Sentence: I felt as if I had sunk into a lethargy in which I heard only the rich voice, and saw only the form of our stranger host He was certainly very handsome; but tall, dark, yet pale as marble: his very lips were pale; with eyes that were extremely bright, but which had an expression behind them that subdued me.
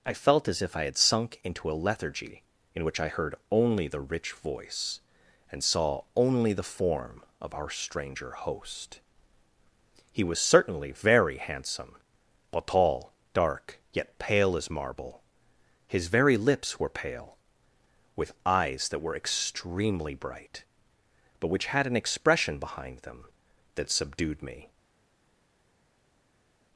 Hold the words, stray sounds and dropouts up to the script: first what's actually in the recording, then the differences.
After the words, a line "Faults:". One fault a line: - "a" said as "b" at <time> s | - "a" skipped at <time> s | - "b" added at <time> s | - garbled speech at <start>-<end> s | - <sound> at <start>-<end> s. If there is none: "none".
I felt as if I had sunk into a lethargy in which I heard only the rich voice, and saw only the form of our stranger host He was certainly very handsome; but tall, dark, yet pale as marble: his very lips were pale; with eyes that were extremely bright, but which had an expression behind them that subdued me.
Faults:
none